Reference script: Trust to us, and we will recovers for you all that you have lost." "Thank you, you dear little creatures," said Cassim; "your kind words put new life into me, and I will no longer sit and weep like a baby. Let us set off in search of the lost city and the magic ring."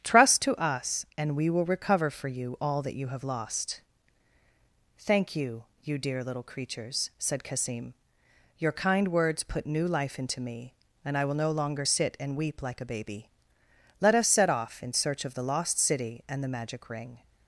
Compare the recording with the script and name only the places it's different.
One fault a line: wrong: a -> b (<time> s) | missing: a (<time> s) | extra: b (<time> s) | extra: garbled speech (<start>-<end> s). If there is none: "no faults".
wrong: recovers -> recover (1.6 s)